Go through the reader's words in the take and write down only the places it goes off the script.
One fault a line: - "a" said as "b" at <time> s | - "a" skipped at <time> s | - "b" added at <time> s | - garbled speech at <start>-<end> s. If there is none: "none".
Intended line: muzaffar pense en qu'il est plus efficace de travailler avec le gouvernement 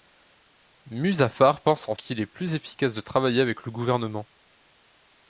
none